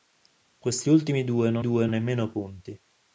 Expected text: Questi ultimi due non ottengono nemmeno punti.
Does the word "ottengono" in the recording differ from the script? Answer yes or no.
yes